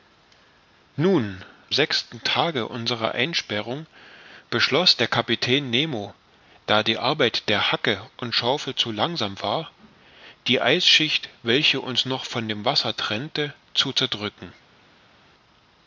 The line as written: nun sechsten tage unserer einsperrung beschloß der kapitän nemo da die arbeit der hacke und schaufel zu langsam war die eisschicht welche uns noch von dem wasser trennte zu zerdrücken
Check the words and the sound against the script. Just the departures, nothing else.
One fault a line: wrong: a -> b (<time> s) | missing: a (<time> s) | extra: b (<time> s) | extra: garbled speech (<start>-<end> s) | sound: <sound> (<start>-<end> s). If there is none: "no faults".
no faults